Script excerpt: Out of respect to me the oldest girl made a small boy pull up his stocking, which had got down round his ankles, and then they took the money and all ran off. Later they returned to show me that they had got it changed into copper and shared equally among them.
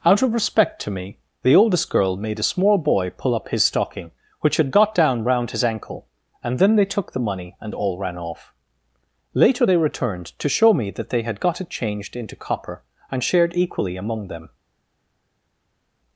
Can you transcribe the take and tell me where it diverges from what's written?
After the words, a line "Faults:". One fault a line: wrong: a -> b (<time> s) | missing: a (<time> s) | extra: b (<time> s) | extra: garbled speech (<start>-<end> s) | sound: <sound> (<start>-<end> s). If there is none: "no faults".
Out of respect to me the oldest girl made a small boy pull up his stocking, which had got down round his ankle, and then they took the money and all ran off. Later they returned to show me that they had got it changed into copper and shared equally among them.
Faults:
wrong: ankles -> ankle (5.6 s)